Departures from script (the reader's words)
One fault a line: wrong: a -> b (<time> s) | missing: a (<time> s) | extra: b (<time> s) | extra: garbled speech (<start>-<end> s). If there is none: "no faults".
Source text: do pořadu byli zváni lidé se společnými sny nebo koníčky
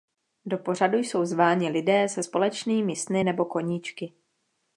wrong: byli -> jsou (1.0 s)